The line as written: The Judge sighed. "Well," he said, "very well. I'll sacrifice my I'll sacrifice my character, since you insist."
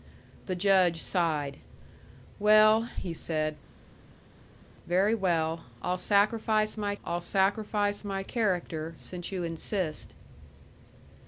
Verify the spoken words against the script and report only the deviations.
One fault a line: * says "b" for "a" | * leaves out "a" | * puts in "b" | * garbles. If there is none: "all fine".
all fine